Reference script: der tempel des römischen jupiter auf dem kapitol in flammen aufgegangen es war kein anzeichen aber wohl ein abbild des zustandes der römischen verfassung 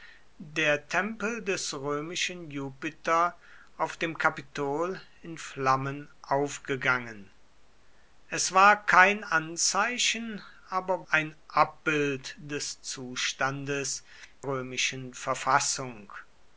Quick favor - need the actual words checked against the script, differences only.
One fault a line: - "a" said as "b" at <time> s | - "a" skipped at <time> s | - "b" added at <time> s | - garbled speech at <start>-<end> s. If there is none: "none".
- "wohl" skipped at 11.1 s
- "der" skipped at 14.0 s